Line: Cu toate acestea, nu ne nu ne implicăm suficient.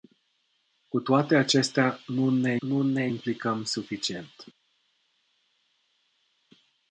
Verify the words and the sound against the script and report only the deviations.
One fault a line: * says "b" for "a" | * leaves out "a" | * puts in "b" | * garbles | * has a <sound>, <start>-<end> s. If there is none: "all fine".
all fine